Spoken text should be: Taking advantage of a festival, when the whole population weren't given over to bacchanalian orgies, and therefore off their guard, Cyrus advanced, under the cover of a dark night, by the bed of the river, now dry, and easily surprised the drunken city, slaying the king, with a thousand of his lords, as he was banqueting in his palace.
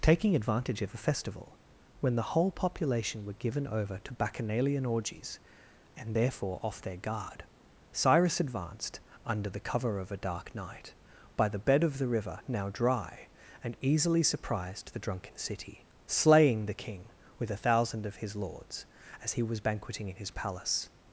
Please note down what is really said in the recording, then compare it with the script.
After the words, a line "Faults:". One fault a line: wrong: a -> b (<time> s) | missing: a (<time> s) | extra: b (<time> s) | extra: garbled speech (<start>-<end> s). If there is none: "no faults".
Taking advantage of a festival, when the whole population were given over to bacchanalian orgies, and therefore off their guard, Cyrus advanced, under the cover of a dark night, by the bed of the river, now dry, and easily surprised the drunken city, slaying the king, with a thousand of his lords, as he was banqueting in his palace.
Faults:
wrong: weren't -> were (3.2 s)